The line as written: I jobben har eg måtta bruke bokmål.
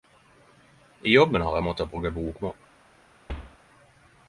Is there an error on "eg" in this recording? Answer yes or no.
no